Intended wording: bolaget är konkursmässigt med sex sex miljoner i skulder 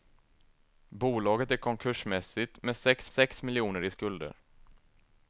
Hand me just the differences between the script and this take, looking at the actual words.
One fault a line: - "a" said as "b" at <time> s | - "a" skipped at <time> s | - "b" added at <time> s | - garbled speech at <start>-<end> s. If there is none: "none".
none